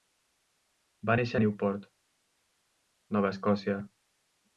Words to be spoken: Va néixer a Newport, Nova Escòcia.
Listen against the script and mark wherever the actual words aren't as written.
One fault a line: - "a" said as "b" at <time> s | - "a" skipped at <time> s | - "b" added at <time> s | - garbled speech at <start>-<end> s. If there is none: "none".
none